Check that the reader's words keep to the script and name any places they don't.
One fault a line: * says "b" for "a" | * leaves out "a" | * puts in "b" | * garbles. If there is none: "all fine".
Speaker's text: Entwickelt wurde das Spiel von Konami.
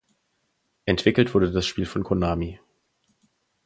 all fine